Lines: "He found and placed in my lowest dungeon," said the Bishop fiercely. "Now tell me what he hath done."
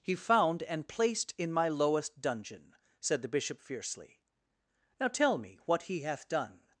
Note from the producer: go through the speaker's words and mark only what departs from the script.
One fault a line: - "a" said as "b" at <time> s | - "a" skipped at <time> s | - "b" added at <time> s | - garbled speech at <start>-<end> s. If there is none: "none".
none